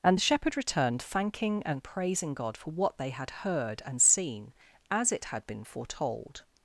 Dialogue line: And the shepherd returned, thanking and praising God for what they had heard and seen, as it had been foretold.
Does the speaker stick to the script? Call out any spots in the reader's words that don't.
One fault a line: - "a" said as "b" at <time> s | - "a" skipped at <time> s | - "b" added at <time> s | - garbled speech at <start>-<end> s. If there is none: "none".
none